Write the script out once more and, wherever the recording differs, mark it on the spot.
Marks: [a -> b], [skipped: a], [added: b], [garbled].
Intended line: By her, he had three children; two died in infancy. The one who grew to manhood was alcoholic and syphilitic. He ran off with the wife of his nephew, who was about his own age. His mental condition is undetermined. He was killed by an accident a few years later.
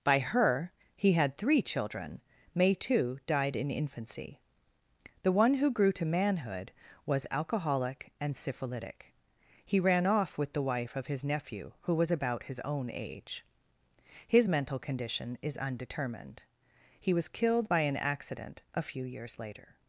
By her, he had three children; [two -> may too] died in infancy. The one who grew to manhood was alcoholic and syphilitic. He ran off with the wife of his nephew, who was about his own age. His mental condition is undetermined. He was killed by an accident a few years later.